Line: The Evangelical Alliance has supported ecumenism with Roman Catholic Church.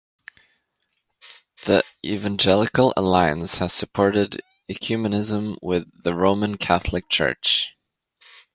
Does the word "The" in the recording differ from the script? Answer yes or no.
no